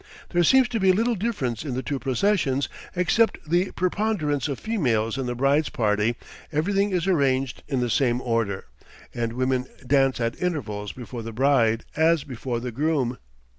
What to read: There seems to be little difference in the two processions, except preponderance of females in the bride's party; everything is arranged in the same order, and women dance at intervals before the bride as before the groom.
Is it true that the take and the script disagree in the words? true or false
true